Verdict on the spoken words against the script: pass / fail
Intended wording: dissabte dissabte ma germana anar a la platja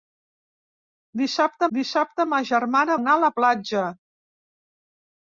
pass